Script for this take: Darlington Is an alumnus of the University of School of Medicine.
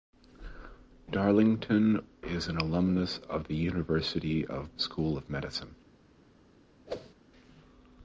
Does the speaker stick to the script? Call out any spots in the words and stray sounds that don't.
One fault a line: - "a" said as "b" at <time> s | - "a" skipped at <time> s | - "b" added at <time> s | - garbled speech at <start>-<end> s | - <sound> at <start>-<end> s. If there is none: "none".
- whoosh at 6.9-7.1 s